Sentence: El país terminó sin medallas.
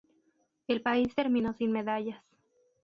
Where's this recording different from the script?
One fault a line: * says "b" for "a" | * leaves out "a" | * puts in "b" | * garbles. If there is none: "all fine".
all fine